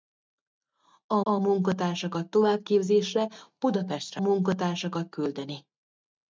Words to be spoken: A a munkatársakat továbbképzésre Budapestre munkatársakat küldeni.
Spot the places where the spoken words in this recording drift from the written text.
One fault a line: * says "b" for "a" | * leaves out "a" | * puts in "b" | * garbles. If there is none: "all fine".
all fine